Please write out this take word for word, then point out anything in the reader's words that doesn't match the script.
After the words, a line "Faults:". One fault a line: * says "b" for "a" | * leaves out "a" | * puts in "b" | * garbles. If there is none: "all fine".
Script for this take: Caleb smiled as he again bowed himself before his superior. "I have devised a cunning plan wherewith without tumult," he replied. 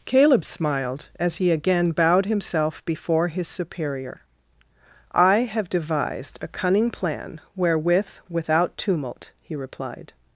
Caleb smiled as he again bowed himself before his superior. "I have devised a cunning plan wherewith without tumult," he replied.
Faults:
all fine